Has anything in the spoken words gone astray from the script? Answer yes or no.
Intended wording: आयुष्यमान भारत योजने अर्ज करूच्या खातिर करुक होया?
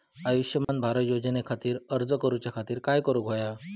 yes